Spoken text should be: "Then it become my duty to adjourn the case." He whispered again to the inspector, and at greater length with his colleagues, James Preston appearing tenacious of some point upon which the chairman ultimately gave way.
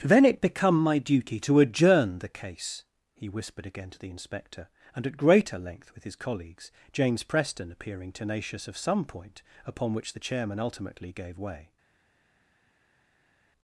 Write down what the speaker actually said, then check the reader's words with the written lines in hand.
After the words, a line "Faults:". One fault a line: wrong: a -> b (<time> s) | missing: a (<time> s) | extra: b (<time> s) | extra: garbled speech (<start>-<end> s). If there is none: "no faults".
"Then it become my duty to adjourn the case." He whispered again to the inspector, and at greater length with his colleagues, James Preston appearing tenacious of some point upon which the chairman ultimately gave way.
Faults:
no faults